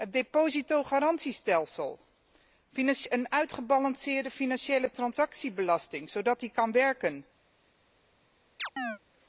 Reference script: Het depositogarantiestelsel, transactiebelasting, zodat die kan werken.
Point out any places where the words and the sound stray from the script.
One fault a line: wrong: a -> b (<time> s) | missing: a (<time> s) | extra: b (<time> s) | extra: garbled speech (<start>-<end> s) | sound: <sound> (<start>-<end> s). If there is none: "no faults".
extra: een uitgebalanceerde financiële (3.1 s)
sound: chirp (8.6-9.0 s)